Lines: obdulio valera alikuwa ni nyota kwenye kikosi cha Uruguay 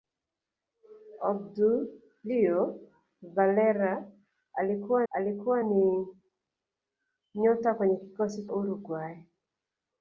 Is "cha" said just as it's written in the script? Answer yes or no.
no